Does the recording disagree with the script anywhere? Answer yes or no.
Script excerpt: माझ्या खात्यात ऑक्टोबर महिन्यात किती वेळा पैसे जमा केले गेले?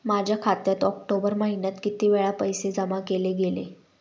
no